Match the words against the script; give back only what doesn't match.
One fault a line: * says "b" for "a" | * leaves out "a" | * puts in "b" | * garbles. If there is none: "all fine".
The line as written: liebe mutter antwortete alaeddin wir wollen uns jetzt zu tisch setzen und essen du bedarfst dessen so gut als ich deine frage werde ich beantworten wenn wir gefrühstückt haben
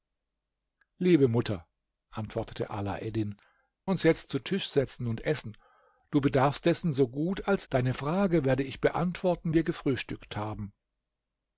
* leaves out "wir wollen"
* leaves out "ich"
* leaves out "wenn"